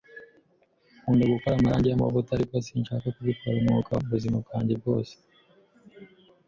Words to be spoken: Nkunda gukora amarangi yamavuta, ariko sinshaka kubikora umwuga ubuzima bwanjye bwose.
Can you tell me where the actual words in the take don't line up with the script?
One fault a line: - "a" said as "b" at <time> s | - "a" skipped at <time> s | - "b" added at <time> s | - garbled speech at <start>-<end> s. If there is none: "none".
none